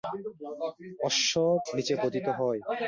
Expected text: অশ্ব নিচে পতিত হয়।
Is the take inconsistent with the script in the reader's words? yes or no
no